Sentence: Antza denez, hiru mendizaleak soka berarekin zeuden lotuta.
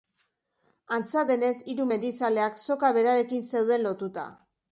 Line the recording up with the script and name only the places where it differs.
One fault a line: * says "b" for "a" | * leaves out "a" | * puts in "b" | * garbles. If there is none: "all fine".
all fine